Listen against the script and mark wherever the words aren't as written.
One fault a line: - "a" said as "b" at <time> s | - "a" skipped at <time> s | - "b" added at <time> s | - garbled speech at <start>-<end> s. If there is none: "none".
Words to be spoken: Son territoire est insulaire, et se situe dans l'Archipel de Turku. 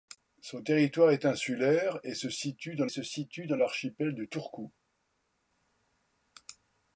- "se situe dans" added at 2.9 s